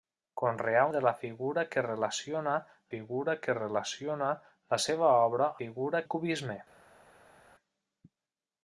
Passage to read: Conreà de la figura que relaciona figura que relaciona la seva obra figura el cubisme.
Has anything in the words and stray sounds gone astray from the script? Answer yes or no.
no